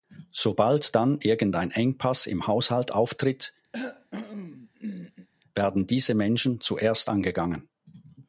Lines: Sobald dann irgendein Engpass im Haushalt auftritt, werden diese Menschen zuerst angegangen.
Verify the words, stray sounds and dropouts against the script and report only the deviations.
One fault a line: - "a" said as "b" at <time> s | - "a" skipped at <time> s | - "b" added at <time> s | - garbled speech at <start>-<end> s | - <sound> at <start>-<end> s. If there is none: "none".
- cough at 3.7-5.3 s